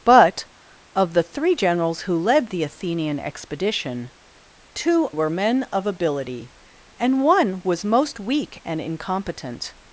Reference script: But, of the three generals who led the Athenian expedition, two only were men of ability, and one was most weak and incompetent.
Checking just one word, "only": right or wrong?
wrong